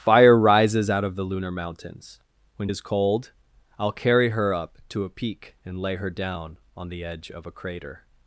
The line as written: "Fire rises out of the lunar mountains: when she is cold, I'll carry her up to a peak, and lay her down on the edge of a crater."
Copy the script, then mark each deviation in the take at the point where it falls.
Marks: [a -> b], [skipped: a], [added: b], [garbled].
"Fire rises out of the lunar mountains: when [skipped: she] is cold, I'll carry her up to a peak, and lay her down on the edge of a crater."